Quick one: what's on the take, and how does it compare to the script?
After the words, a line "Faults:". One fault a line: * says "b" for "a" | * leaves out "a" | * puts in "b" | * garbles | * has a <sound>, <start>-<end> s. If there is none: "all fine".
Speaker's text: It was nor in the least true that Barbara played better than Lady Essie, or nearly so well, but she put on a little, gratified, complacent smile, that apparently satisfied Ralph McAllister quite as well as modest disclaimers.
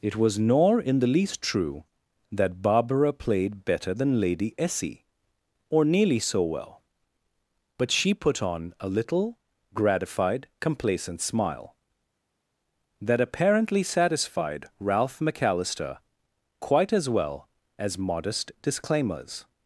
It was nor in the least true that Barbara played better than Lady Essie, or nearly so well, but she put on a little, gratified, complacent smile, that apparently satisfied Ralph McAllister quite as well as modest disclaimers.
Faults:
all fine